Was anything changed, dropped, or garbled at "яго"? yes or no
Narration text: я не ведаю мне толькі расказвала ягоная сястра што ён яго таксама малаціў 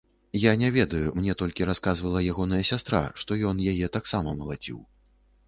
yes